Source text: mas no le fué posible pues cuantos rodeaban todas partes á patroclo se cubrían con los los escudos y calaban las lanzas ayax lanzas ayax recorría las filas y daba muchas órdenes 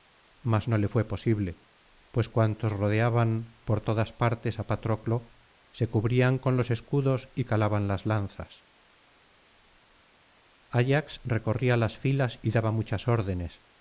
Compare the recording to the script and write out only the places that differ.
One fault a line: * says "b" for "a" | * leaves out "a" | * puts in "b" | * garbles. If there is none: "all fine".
* puts in "por"
* leaves out "los"
* leaves out "lanzas ayax"